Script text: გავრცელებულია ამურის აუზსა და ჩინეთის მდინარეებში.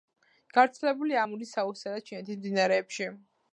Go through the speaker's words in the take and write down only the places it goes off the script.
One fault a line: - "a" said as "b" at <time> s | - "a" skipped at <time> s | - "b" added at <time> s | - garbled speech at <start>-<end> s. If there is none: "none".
none